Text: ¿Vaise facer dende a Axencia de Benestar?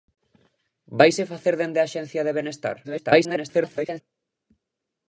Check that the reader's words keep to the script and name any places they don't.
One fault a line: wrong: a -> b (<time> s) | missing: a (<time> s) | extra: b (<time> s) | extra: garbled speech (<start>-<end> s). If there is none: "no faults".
extra: garbled speech (2.8-4.0 s)